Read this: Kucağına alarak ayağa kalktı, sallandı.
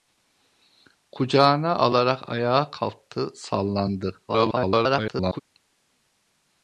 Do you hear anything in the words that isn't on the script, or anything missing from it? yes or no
yes